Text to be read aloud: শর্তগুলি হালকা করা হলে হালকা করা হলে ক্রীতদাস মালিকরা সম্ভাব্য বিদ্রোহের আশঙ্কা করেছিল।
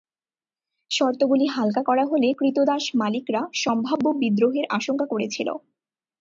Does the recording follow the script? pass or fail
fail